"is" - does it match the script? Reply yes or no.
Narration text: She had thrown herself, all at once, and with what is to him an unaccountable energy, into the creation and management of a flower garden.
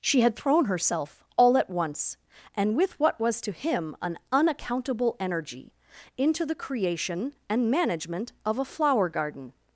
no